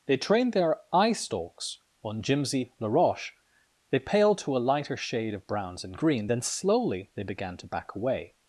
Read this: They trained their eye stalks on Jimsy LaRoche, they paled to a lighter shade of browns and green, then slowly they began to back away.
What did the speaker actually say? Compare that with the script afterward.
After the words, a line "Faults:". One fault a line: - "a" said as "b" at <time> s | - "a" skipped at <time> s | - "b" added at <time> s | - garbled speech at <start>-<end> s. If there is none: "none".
They trained their eye stalks on Jimsy LaRoche, they paled to a lighter shade of browns and green, then slowly they began to back away.
Faults:
none